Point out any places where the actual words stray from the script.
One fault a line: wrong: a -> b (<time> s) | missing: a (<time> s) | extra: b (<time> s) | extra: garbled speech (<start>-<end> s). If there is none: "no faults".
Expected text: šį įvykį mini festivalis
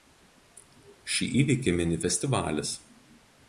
no faults